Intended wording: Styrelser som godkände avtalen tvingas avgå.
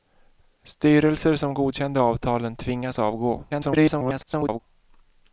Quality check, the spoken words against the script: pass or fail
fail